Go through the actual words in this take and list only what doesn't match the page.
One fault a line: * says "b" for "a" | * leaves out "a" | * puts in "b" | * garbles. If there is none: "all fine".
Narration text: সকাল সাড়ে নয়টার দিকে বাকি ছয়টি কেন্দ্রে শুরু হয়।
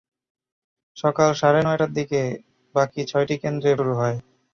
all fine